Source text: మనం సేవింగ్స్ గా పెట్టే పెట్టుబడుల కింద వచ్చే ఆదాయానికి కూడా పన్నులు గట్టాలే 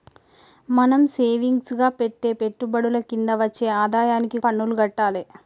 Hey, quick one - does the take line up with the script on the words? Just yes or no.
no